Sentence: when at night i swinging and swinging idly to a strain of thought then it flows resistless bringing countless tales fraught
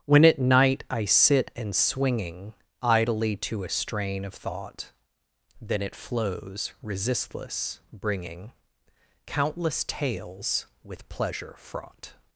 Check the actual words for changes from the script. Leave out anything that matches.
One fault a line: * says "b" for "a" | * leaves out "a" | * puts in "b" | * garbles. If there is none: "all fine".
* says "sit" for "swinging"
* puts in "with pleasure"